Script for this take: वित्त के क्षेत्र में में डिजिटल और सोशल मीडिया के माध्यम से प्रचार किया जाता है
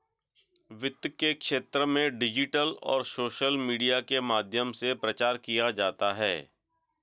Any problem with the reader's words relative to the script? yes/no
yes